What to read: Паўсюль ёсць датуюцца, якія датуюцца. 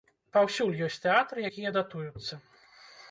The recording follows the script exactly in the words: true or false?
false